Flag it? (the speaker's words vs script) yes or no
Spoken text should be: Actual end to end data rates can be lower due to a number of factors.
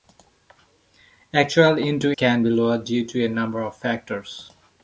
yes